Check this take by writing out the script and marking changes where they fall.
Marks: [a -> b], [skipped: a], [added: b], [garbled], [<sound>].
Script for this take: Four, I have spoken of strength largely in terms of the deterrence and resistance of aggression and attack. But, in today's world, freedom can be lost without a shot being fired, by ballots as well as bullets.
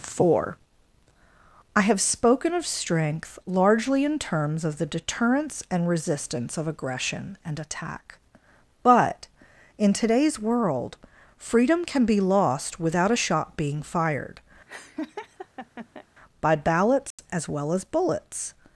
Four, I have spoken of strength largely in terms of the deterrence and resistance of aggression and attack. But, in today's world, freedom can be lost without a shot being fired, [laugh] by ballots [dropout] as well as bullets.